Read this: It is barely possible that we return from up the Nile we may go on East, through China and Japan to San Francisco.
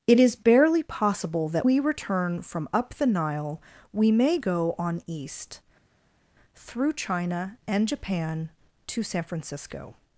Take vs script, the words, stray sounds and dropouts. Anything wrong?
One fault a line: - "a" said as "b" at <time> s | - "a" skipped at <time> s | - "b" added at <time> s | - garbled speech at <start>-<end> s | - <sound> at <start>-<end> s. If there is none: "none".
none